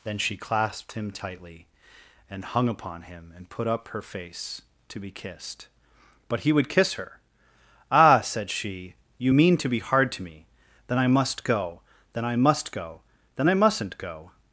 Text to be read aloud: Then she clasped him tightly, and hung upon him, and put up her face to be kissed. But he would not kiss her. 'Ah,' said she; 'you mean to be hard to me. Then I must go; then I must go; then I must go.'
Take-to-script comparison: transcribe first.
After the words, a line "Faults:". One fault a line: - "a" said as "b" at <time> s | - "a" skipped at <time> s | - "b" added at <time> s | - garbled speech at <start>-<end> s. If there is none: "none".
Then she clasped him tightly, and hung upon him, and put up her face to be kissed. But he would kiss her. 'Ah,' said she; 'you mean to be hard to me. Then I must go; then I must go; then I mustn't go.'
Faults:
- "not" skipped at 6.7 s
- "must" said as "mustn't" at 13.5 s